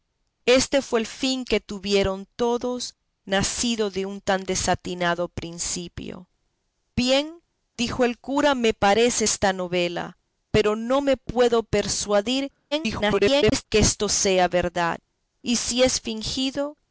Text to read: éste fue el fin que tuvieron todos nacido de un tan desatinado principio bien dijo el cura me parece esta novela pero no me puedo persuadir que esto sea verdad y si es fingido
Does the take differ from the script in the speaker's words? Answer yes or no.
yes